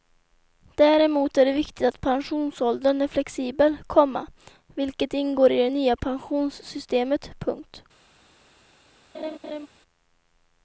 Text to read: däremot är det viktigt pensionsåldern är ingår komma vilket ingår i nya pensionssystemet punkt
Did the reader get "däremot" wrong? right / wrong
right